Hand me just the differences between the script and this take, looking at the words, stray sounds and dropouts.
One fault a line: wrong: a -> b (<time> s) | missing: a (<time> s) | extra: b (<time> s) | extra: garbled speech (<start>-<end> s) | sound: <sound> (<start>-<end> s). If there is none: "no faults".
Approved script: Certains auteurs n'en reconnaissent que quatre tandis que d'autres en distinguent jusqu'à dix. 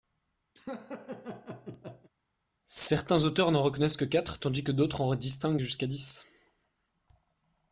sound: laugh (0.6-2.1 s)